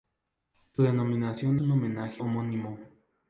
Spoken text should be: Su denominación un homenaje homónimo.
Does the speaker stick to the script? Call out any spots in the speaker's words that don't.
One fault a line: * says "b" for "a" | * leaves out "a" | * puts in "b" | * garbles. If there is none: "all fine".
all fine